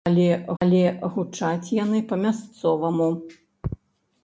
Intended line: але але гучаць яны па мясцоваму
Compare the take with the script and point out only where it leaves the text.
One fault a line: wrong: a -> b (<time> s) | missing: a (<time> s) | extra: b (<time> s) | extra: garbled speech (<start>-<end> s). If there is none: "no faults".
no faults